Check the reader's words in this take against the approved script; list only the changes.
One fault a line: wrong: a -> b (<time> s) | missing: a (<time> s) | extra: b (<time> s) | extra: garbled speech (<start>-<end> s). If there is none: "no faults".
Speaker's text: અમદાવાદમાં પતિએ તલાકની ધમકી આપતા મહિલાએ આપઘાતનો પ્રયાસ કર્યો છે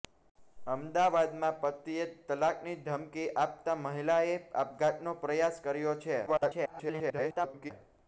extra: garbled speech (6.3-7.7 s)